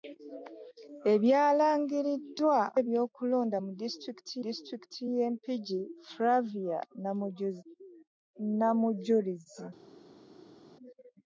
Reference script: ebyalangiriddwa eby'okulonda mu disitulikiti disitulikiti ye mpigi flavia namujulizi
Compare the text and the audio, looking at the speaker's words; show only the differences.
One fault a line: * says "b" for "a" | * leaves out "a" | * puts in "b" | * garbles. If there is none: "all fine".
all fine